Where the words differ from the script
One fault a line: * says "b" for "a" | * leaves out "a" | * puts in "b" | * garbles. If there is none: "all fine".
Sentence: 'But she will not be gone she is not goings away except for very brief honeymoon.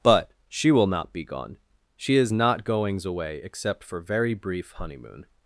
all fine